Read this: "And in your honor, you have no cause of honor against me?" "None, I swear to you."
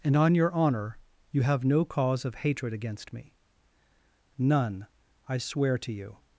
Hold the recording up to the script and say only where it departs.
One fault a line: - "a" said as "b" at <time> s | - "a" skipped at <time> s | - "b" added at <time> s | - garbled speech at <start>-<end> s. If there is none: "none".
- "in" said as "on" at 0.1 s
- "honor" said as "hatred" at 2.4 s